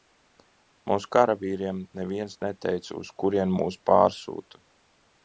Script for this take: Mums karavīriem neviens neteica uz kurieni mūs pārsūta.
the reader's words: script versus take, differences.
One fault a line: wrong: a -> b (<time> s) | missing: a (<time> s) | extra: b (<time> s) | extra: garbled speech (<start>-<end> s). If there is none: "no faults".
no faults